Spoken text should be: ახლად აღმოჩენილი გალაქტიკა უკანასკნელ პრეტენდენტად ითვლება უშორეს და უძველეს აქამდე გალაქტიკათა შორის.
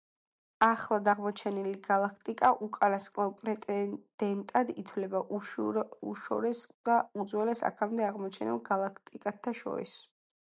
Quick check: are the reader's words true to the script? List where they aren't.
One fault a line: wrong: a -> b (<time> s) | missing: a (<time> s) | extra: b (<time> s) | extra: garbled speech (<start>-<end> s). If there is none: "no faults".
extra: აღმოჩენილ (8.1 s)